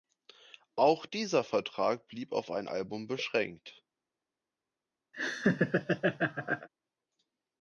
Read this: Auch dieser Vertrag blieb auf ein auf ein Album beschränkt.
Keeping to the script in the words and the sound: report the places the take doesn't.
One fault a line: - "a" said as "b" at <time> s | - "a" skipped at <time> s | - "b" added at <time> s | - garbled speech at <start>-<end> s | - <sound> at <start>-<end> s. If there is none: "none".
- "auf ein" skipped at 2.7 s
- laugh at 5.1-6.7 s